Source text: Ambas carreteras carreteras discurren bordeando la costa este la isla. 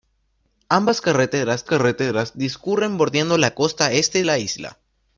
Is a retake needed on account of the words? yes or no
no